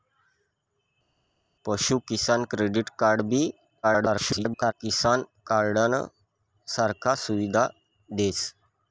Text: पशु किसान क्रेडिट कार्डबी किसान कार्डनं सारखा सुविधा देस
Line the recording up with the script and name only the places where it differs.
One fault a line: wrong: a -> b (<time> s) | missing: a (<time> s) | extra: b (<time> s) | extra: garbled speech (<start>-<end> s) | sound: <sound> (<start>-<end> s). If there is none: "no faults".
extra: garbled speech (3.8-4.7 s)